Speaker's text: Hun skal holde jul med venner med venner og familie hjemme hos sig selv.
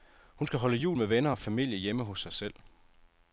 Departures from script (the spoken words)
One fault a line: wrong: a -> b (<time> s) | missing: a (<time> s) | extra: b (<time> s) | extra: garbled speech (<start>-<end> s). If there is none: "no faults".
missing: med venner (1.3 s)